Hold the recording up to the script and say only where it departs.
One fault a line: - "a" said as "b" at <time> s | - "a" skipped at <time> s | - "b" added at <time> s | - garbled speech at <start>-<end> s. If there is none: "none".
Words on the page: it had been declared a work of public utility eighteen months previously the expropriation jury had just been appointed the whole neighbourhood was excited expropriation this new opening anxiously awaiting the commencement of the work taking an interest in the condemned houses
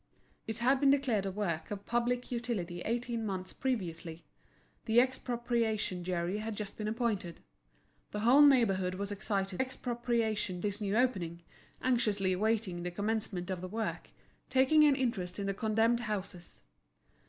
none